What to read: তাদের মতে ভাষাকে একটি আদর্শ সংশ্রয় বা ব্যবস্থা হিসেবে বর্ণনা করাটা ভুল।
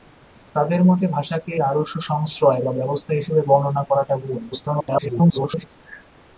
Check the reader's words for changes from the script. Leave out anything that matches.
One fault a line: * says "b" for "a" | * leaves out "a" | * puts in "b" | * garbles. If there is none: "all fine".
* leaves out "একটি"
* garbles